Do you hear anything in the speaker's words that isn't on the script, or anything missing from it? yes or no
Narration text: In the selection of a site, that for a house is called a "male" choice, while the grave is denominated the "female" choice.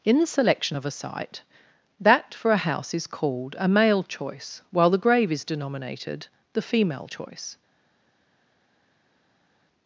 no